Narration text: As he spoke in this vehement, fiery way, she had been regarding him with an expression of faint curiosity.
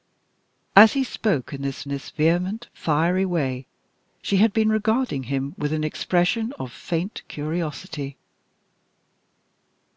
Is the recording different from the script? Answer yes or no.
yes